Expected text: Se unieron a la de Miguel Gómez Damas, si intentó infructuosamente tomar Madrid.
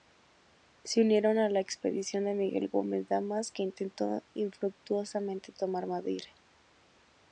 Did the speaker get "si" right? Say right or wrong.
wrong